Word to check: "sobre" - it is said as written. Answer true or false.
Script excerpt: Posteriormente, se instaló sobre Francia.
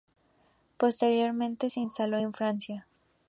false